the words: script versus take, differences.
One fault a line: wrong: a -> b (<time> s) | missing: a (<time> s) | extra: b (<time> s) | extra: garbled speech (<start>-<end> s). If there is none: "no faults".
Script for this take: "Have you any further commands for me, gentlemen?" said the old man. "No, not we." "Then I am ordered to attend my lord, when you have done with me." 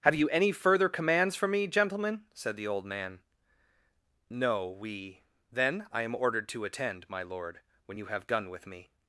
missing: not (4.7 s)